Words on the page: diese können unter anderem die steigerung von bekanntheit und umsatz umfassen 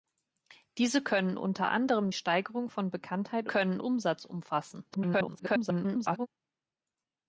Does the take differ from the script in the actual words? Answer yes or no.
yes